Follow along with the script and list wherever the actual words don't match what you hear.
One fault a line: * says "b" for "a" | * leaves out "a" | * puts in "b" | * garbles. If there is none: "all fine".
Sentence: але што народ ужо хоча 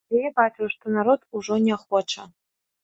* puts in "я бачыў"
* puts in "не"